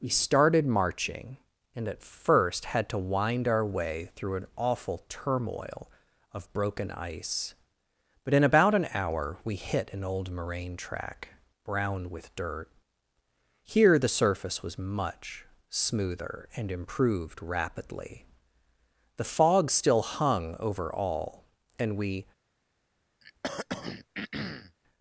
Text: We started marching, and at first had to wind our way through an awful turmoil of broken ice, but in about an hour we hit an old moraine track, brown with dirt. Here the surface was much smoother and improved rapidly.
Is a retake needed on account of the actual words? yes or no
yes